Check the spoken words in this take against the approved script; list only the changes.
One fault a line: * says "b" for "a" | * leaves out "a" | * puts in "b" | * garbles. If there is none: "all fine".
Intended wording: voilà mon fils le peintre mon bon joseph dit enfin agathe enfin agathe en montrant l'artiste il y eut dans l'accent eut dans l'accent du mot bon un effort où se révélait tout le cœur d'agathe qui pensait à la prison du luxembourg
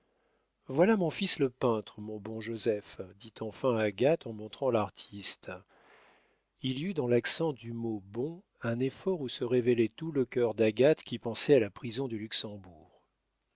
* leaves out "enfin agathe"
* leaves out "eut dans l'accent"